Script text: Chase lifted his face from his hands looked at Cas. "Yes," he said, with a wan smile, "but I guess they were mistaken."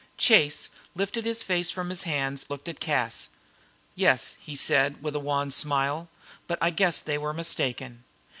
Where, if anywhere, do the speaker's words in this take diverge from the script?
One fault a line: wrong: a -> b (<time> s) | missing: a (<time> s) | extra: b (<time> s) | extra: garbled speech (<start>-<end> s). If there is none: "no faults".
no faults